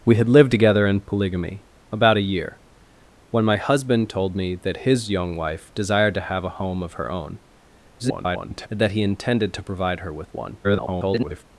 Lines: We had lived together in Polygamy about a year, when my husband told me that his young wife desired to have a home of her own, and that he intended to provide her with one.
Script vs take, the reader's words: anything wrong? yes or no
yes